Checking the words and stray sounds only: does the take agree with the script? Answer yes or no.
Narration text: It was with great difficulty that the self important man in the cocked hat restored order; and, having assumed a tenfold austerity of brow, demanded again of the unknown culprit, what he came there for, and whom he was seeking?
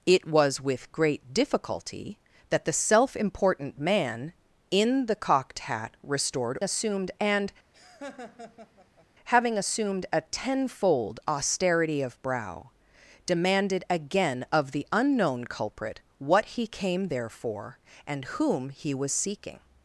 no